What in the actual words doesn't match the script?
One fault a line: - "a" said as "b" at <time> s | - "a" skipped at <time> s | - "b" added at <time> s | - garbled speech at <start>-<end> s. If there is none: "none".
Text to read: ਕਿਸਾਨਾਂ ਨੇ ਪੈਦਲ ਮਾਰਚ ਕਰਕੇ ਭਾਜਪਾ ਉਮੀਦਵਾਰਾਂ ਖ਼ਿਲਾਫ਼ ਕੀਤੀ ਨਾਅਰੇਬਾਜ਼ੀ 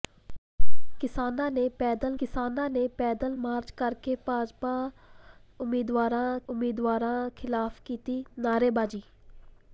- "ਕਿਸਾਨਾਂ ਨੇ ਪੈਦਲ" added at 2.2 s
- "ਉਮੀਦਵਾਰਾਂ" added at 6.5 s